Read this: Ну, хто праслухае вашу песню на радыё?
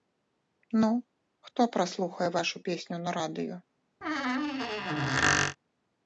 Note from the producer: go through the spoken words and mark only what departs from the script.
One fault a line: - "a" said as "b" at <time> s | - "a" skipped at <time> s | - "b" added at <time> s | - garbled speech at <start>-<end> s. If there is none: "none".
none